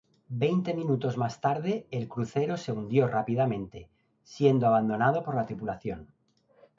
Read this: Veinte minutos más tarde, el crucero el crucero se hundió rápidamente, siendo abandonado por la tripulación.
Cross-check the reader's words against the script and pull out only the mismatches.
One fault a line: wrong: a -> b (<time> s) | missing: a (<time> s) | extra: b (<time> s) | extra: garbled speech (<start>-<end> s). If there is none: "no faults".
missing: el crucero (2.6 s)